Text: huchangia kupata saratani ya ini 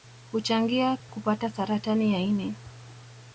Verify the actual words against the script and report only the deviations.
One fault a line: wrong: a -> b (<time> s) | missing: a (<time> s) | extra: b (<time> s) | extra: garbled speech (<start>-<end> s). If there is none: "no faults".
no faults